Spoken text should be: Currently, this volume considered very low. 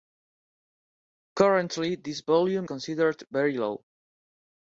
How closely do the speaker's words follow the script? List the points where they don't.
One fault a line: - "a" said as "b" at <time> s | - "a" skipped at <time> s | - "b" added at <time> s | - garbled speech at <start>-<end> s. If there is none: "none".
none